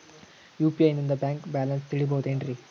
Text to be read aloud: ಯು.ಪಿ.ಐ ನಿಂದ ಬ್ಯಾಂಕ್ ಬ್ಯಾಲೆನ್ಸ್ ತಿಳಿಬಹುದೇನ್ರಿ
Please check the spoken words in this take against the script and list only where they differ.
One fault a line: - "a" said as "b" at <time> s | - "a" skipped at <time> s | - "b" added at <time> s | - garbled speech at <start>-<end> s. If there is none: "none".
none